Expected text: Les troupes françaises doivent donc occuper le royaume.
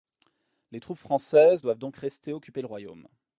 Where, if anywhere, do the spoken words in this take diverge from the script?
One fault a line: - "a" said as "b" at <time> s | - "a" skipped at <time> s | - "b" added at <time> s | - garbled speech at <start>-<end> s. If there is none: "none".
- "rester" added at 2.0 s